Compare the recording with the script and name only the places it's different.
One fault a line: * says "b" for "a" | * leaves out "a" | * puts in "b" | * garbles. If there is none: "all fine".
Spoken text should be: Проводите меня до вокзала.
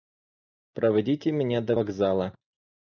all fine